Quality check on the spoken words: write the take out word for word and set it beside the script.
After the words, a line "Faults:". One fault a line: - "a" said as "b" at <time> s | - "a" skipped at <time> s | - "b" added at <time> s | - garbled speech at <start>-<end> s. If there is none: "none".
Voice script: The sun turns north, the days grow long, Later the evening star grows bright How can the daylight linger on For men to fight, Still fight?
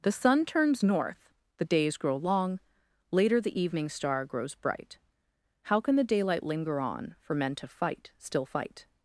The sun turns north, the days grow long, Later the evening star grows bright How can the daylight linger on For men to fight, Still fight?
Faults:
none